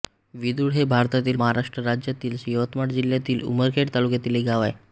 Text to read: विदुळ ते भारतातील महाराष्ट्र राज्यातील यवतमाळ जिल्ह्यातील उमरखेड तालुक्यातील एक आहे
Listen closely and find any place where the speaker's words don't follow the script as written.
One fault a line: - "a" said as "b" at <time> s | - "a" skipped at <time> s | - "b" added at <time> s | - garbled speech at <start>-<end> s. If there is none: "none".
- "ते" said as "हे" at 0.7 s
- "गाव" added at 4.5 s